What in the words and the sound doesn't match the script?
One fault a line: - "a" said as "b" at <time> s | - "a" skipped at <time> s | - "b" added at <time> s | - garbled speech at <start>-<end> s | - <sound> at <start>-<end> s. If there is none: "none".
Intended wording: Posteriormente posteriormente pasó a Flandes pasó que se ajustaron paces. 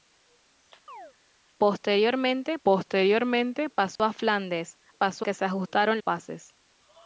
- chirp at 0.9-1.1 s
- dropout at 4.0-4.0 s